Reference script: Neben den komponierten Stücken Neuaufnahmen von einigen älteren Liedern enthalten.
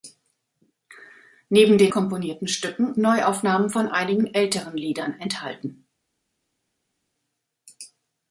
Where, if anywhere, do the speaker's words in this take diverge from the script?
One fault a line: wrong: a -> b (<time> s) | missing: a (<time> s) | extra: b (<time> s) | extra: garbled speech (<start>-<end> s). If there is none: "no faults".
no faults